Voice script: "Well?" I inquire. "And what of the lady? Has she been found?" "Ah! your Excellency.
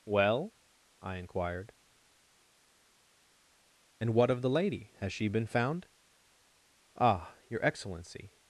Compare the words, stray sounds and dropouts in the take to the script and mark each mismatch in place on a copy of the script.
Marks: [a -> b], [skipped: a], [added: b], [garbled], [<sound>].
"Well?" I [inquire. -> inquired] "And what of the lady? Has she been found?" "Ah! your Excellency.